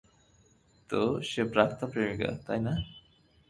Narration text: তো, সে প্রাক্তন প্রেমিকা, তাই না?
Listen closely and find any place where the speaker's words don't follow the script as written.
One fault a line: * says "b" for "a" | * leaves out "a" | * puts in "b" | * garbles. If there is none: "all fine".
all fine